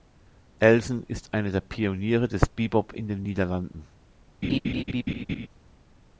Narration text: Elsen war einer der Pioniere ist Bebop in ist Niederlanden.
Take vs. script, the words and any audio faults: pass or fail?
fail